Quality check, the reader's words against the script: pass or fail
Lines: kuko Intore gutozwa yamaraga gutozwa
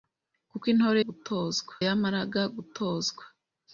pass